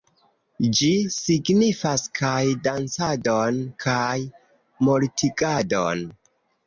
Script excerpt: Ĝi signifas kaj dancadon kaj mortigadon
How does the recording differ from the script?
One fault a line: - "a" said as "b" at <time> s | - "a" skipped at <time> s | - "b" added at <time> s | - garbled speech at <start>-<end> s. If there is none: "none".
none